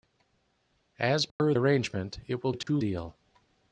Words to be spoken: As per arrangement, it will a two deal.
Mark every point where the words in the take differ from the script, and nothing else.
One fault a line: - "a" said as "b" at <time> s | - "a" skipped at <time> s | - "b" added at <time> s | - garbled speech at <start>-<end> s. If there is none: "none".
none